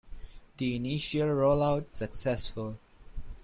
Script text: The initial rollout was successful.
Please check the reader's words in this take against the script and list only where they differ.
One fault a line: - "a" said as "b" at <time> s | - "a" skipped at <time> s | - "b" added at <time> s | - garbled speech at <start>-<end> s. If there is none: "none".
- "was" skipped at 1.9 s